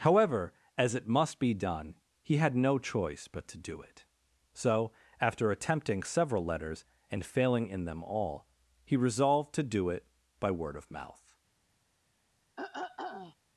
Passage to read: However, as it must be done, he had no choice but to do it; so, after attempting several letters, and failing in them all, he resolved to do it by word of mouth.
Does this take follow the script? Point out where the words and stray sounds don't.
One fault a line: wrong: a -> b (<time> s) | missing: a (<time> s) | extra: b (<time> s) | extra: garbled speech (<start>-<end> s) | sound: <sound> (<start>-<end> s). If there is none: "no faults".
sound: throat clearing (12.6-13.4 s)